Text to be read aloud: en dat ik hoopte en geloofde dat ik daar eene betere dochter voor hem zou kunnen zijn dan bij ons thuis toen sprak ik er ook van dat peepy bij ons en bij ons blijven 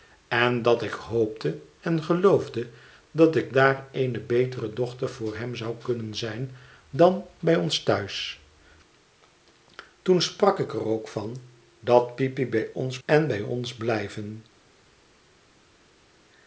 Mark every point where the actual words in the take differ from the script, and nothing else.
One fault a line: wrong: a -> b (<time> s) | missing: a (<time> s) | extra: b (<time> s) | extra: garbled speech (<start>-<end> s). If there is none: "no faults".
no faults